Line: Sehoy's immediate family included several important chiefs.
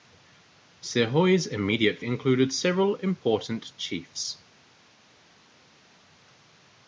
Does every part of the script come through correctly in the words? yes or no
no